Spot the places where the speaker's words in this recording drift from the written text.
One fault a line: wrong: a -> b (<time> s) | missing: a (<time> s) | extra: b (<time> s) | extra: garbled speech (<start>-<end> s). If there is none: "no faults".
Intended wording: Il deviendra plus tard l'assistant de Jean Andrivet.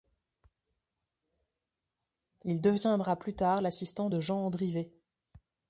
no faults